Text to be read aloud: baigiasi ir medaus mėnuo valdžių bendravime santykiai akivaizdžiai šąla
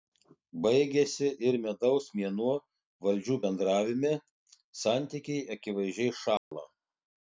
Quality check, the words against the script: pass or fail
pass